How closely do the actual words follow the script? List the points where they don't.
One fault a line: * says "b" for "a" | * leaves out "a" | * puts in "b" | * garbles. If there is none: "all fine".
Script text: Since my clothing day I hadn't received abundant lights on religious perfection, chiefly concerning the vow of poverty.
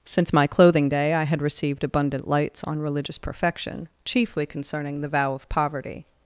* says "had" for "hadn't"